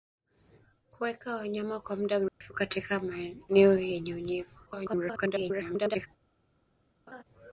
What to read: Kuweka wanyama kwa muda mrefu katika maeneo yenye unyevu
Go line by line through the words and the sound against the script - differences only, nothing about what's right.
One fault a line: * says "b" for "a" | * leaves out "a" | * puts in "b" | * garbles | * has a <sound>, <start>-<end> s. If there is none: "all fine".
* has a dropout, 2.3-2.4 s
* garbles
* has a laugh, 7.1-7.2 s